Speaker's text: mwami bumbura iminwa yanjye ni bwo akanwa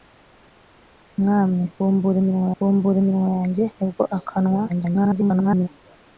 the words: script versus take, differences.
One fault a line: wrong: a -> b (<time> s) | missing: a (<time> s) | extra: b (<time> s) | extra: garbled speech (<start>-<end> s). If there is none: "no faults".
extra: bumbura iminwa (2.6 s)
extra: garbled speech (4.7-5.7 s)